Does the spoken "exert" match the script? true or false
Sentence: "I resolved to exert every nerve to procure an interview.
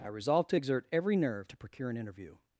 true